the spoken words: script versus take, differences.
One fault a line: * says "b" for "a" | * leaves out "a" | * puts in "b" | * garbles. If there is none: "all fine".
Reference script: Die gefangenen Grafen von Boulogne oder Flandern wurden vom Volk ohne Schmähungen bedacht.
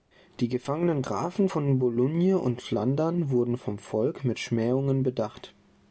* says "und" for "oder"
* says "mit" for "ohne"